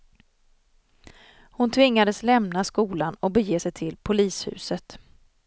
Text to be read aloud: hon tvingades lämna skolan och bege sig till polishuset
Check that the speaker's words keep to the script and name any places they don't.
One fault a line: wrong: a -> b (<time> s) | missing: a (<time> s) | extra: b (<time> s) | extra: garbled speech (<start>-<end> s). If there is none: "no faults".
no faults